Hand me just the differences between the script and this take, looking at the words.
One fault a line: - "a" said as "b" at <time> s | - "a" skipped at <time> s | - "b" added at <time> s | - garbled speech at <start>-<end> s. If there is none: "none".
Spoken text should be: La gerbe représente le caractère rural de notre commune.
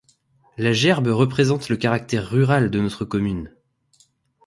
none